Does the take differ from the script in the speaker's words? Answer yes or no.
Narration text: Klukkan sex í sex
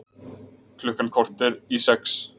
yes